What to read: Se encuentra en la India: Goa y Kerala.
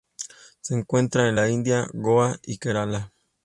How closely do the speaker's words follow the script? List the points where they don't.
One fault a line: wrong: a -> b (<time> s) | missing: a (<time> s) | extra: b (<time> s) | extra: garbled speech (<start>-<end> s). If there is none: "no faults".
no faults